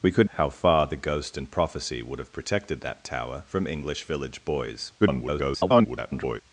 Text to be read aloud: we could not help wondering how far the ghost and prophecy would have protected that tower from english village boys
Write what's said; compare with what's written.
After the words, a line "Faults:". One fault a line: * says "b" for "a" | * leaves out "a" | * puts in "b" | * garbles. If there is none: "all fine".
we could how far the ghost and prophecy would have protected that tower from english village boys [garbled]
Faults:
* leaves out "not help wondering"
* garbles